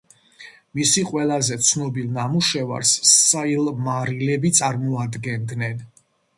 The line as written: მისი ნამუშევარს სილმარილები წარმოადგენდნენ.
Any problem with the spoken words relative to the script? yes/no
yes